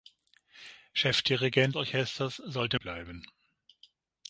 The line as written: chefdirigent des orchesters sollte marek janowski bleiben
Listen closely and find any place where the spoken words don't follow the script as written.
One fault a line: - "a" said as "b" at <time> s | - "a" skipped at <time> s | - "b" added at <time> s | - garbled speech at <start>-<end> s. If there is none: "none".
- "des" skipped at 1.7 s
- "marek janowski" skipped at 2.8 s